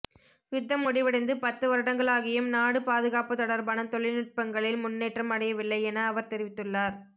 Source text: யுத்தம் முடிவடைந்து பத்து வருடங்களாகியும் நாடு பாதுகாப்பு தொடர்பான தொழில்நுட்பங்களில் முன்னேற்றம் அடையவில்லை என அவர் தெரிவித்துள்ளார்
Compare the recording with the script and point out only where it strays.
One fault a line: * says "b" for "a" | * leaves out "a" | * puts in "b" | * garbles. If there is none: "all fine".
all fine